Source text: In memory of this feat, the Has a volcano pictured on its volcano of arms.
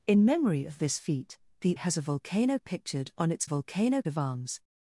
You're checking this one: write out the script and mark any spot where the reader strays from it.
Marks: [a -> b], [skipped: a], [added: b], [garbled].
In memory of this feat, the Has a volcano pictured on its volcano of arms.